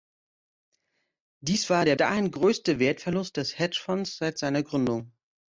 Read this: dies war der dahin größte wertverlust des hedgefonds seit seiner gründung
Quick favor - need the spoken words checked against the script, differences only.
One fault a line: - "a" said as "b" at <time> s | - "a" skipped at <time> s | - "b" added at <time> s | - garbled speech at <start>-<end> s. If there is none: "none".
none